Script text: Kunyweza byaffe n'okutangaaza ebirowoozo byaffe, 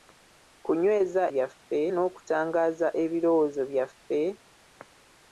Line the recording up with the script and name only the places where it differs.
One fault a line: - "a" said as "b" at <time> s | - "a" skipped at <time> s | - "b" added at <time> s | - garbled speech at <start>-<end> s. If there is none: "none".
none